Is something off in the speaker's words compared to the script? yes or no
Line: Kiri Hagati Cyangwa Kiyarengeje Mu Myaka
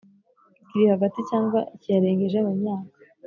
no